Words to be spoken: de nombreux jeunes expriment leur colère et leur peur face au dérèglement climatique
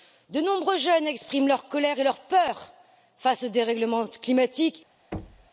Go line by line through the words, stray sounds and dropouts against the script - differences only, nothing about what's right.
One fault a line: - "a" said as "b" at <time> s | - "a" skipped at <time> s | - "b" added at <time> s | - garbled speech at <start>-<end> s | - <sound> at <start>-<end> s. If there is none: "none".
- thud at 5.1-5.5 s